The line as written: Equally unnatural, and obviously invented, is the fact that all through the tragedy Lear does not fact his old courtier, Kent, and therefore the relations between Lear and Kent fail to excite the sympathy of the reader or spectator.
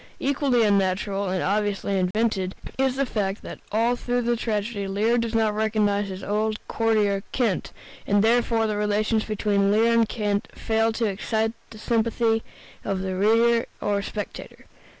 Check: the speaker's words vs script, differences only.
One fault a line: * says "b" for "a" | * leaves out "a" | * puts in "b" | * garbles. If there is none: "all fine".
* says "recognize" for "fact"